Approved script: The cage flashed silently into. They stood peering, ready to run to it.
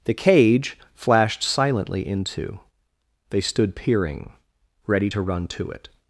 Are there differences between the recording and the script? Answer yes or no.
no